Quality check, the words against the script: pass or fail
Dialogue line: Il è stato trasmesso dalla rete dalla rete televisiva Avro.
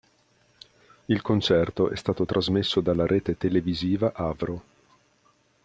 fail